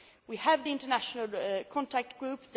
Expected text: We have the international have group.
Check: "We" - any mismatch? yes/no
no